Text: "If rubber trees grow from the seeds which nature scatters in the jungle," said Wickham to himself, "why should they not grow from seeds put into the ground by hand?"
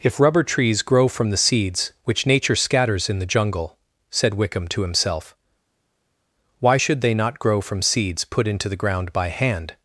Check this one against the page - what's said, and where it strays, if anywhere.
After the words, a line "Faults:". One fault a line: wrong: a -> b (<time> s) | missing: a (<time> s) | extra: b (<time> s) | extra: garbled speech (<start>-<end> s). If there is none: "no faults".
"If rubber trees grow from the seeds which nature scatters in the jungle," said Wickham to himself, "why should they not grow from seeds put into the ground by hand?"
Faults:
no faults